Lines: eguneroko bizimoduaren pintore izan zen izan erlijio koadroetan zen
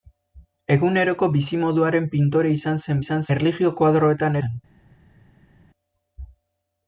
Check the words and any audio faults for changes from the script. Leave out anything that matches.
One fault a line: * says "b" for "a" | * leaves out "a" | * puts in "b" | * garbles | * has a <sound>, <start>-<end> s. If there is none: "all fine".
all fine